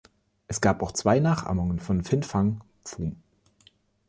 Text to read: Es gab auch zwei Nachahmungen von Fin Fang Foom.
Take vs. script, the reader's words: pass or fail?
pass